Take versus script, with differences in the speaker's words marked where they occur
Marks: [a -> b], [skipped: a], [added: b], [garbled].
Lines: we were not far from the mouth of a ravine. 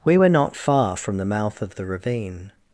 we were not far from the mouth of [a -> the] ravine.